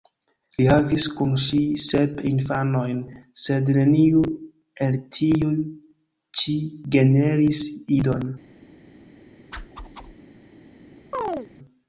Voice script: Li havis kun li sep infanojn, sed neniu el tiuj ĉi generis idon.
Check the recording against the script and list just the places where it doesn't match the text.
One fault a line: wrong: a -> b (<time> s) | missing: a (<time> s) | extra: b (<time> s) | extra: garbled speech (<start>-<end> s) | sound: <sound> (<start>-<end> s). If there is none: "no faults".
wrong: li -> ŝi (1.4 s)
sound: whoosh (9.5-10.2 s)
sound: chirp (11.1-11.5 s)